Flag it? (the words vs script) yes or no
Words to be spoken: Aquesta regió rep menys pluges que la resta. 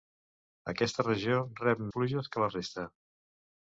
yes